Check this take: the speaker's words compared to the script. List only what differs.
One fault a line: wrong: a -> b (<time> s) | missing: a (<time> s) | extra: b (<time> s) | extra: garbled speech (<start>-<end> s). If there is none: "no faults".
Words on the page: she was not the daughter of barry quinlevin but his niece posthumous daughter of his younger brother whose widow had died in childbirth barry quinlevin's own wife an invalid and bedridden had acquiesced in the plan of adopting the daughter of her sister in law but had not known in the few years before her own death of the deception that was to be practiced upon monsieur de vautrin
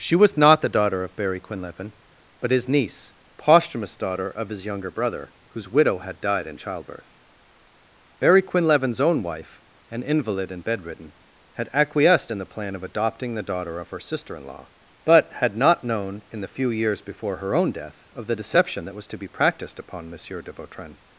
no faults